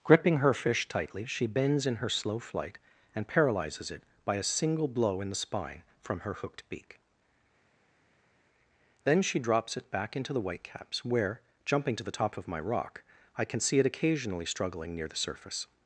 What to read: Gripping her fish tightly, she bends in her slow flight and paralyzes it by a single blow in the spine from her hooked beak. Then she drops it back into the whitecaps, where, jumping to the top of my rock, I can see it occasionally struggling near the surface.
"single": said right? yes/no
yes